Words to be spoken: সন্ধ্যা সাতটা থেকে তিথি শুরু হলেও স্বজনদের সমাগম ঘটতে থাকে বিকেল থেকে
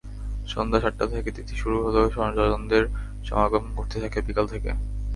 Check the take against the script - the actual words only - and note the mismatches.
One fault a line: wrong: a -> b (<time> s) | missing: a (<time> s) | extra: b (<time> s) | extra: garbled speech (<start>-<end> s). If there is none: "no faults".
no faults